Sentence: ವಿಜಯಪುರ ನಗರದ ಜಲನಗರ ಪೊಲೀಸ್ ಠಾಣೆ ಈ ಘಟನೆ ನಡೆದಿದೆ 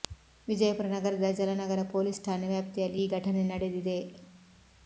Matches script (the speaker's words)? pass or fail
fail